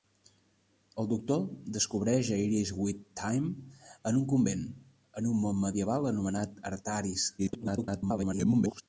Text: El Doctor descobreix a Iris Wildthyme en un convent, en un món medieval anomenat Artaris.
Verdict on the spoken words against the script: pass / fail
fail